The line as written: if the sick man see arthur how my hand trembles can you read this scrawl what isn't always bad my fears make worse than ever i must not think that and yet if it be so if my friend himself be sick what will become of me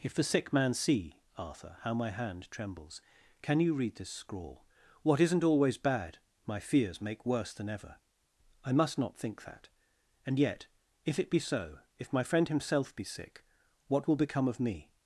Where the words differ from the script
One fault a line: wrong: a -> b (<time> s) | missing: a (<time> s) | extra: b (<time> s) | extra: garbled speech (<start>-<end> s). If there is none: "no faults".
no faults